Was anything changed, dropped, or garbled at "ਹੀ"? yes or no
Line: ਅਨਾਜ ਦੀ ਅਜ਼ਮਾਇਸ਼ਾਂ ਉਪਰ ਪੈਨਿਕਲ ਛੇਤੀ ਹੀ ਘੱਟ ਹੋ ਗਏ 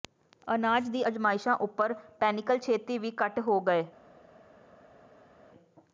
no